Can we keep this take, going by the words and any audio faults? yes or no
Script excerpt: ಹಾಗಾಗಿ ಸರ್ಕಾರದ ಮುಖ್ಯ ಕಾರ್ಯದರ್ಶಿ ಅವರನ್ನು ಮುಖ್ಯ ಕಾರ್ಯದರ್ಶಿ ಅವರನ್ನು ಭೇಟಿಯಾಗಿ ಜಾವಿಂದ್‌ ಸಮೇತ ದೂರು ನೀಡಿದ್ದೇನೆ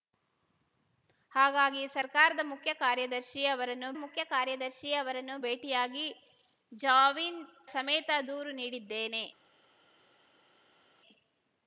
yes